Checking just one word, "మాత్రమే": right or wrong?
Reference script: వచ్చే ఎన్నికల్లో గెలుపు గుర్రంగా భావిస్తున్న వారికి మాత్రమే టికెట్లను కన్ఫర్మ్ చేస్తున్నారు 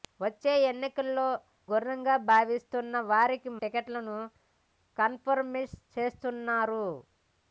wrong